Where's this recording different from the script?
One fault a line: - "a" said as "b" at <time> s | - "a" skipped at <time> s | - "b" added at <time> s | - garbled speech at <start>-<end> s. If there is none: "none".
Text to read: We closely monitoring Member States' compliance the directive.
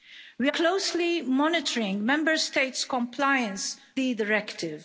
none